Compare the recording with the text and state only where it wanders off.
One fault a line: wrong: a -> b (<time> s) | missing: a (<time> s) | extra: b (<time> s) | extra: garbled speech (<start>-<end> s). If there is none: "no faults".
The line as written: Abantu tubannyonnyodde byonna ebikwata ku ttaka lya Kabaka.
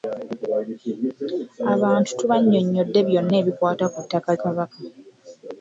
missing: lya (4.3 s)